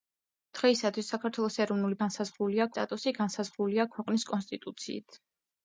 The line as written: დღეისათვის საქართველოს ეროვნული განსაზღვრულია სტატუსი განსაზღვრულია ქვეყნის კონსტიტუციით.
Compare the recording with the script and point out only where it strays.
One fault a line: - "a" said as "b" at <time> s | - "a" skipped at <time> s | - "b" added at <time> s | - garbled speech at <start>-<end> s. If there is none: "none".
none